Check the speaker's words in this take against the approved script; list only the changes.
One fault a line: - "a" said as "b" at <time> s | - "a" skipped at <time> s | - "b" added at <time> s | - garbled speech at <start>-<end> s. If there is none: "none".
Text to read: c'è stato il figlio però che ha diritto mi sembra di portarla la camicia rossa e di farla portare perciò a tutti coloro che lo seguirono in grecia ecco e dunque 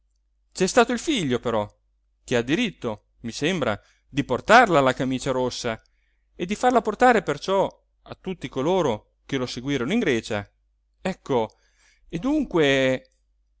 none